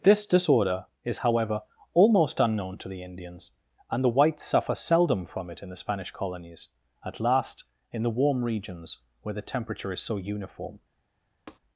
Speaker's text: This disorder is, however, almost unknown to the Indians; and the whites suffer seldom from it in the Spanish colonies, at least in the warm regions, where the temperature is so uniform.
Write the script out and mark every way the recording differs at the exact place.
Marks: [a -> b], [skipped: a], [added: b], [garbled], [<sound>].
This disorder is, however, almost unknown to the Indians; and the whites suffer seldom from it in the Spanish colonies, at [least -> last] in the warm regions, where the temperature is so uniform. [tap]